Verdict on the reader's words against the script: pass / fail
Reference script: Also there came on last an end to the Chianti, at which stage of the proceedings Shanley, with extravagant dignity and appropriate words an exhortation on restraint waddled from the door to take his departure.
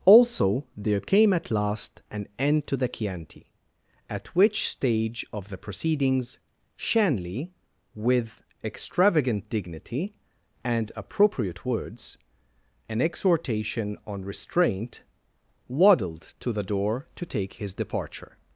fail